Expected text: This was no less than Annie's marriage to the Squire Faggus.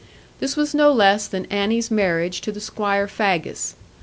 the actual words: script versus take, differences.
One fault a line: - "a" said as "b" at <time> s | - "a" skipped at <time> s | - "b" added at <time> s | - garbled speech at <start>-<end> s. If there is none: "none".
none